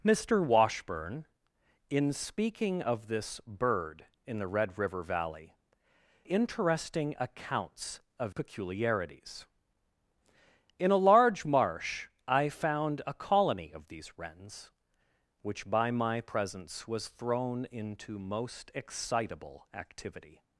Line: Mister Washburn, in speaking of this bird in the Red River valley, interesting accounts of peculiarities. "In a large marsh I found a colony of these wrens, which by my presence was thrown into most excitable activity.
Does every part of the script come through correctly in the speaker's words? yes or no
yes